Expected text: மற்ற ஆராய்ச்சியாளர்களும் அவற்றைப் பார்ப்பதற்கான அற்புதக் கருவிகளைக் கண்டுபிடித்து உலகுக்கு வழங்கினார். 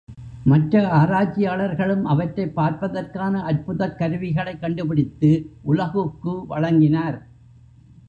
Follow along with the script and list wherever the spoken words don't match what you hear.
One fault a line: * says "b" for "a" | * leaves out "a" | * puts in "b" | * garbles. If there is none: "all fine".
all fine